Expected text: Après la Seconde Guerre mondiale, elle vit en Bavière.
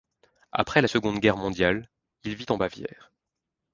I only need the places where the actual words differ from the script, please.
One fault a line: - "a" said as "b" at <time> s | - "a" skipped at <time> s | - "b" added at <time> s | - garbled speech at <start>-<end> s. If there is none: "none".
- "elle" said as "il" at 2.2 s